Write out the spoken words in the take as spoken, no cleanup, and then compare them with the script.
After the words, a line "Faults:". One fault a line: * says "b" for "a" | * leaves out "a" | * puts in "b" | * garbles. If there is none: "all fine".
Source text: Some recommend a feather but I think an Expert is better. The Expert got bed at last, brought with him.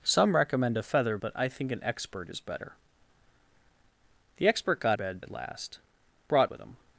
Some recommend a feather but I think an Expert is better. The Expert got bed at last, brought with him.
Faults:
all fine